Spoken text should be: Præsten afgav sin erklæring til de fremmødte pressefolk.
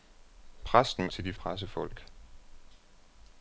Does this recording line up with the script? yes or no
no